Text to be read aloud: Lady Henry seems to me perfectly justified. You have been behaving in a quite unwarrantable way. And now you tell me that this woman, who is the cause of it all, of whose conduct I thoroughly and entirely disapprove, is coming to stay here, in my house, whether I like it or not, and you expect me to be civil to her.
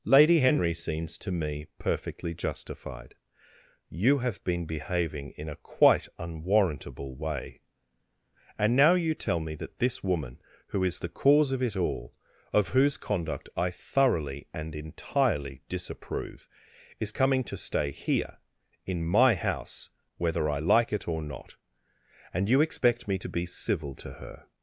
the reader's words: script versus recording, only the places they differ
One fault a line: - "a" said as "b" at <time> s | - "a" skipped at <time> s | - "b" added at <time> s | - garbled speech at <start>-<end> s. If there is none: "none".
none